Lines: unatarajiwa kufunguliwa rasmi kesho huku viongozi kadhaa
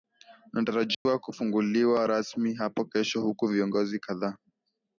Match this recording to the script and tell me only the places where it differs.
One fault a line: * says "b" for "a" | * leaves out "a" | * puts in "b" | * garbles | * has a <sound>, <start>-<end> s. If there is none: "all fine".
* has a dropout, 0.9-1.1 s
* puts in "hapo"